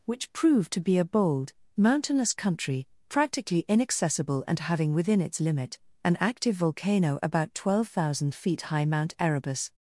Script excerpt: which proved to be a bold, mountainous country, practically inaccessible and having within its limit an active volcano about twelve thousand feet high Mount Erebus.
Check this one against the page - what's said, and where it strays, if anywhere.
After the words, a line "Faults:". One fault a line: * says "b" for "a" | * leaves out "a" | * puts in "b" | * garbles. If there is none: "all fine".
which proved to be a bold, mountainous country, practically inaccessible and having within its limit an active volcano about twelve thousand feet high Mount Erebus.
Faults:
all fine